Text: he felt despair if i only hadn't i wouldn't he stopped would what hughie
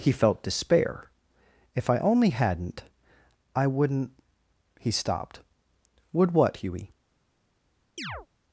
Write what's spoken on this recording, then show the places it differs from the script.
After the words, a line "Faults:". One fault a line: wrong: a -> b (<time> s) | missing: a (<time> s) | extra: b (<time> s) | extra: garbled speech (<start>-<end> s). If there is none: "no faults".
he felt despair if i only hadn't i wouldn't he stopped would what hughie
Faults:
no faults